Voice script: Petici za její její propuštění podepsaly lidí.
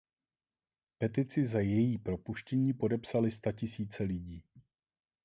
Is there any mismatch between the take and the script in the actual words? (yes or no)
yes